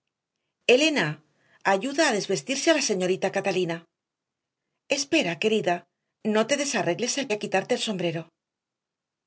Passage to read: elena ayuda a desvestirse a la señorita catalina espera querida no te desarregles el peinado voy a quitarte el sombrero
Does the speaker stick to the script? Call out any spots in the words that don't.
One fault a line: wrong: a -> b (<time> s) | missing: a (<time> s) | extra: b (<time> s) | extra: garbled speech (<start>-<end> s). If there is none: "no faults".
missing: peinado voy (7.3 s)